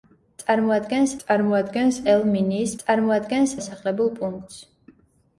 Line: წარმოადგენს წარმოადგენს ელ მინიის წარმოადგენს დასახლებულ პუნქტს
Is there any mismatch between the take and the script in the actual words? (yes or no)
no